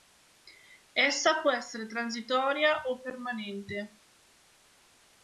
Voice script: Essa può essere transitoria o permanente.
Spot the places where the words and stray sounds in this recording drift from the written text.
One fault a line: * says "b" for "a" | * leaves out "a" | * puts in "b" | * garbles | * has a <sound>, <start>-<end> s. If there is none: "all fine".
all fine